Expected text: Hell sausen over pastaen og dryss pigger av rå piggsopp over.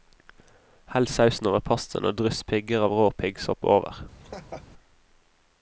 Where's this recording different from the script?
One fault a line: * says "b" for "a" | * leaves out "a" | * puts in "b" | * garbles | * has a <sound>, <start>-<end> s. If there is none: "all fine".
* has a laugh, 4.2-4.7 s